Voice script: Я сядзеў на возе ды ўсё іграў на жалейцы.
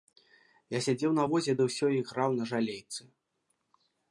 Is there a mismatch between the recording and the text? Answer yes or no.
no